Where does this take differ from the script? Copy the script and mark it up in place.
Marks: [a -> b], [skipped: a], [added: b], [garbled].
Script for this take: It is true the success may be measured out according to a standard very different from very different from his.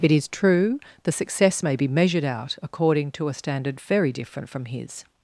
It is true the success may be measured out according to a standard very different from [skipped: very different from] his.